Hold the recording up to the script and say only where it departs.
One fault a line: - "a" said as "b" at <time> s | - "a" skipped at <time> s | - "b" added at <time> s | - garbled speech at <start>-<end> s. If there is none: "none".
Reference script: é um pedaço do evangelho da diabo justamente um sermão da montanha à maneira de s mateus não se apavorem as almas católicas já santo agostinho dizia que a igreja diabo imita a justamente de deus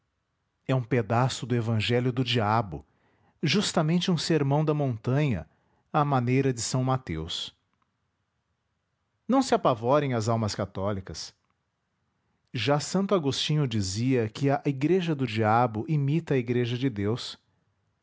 - "da" said as "do" at 2.1 s
- "do" added at 15.1 s
- "justamente" said as "igreja" at 16.4 s